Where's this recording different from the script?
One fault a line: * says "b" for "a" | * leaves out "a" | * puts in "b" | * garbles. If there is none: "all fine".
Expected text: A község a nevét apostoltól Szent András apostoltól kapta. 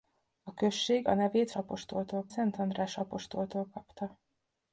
all fine